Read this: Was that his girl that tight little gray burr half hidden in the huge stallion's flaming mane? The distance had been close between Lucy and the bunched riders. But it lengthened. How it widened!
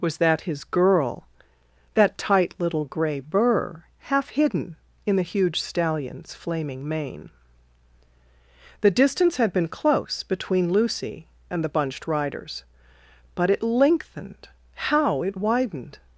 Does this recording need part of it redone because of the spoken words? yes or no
no